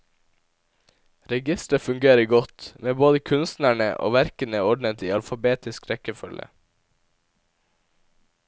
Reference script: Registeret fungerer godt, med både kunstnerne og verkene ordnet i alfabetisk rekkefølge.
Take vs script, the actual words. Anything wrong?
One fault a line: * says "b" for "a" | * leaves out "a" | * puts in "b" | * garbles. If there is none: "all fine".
all fine